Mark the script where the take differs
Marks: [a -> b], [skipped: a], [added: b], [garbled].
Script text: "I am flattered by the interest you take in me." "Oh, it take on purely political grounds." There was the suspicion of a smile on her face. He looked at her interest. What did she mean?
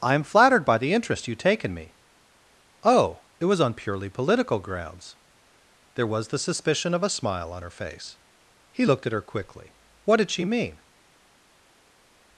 "I am flattered by the interest you take in me." "Oh, it [take -> was] on purely political grounds." There was the suspicion of a smile on her face. He looked at her [interest. -> quickly] What did she mean?